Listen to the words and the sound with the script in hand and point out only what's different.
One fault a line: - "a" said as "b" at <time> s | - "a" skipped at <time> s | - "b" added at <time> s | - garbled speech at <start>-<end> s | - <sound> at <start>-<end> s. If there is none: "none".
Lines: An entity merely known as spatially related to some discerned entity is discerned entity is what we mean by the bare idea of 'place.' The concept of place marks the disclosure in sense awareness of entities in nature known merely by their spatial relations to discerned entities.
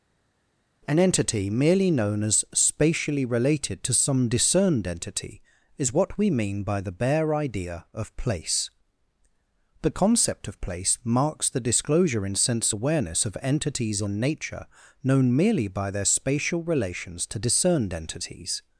- "discerned entity is" skipped at 5.9 s